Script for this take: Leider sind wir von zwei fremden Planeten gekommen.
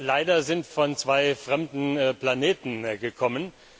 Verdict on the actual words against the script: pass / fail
fail